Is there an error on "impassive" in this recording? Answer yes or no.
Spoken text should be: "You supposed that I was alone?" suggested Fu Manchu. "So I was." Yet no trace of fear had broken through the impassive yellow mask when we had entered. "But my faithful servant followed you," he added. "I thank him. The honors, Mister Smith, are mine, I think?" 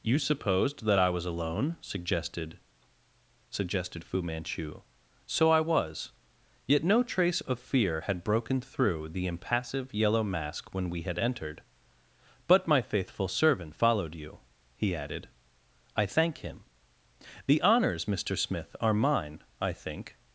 no